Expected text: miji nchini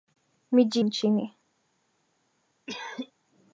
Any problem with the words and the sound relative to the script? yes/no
yes